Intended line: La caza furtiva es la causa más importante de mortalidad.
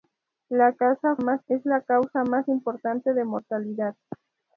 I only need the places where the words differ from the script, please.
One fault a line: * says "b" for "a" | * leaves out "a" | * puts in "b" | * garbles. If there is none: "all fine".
* says "más" for "furtiva"